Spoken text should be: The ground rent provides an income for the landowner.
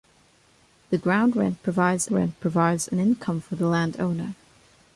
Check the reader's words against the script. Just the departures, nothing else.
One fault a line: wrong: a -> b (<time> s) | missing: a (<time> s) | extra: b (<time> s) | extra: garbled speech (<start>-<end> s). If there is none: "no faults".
extra: rent provides (2.1 s)